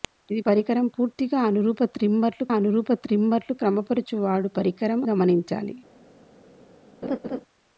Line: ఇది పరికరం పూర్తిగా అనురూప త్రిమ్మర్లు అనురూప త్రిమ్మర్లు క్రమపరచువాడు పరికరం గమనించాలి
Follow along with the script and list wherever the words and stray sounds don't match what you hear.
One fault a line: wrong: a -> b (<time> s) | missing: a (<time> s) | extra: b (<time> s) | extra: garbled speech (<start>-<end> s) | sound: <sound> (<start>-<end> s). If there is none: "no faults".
sound: laugh (7.0-7.4 s)